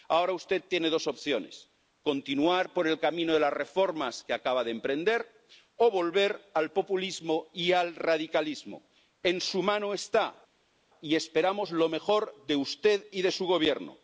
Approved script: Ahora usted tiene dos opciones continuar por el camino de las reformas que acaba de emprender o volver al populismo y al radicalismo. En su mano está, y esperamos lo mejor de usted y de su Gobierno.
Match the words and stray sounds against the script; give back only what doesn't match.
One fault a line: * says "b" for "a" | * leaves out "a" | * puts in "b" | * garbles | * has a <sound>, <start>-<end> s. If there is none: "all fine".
all fine